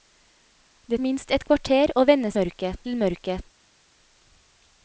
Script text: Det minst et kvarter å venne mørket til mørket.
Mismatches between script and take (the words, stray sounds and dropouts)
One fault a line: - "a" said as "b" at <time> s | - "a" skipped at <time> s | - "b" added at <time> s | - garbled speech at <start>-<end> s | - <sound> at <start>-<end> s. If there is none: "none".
none